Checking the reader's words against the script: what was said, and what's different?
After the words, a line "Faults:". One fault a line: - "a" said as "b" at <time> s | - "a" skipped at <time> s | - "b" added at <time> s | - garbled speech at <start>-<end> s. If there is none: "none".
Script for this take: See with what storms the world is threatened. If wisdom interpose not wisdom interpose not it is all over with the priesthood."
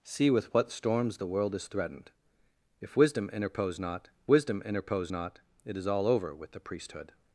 See with what storms the world is threatened. If wisdom interpose not wisdom interpose not it is all over with the priesthood."
Faults:
none